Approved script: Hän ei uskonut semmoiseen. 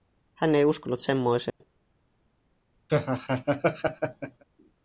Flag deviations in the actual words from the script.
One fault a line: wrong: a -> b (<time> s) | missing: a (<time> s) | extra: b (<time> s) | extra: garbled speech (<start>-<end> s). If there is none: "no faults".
no faults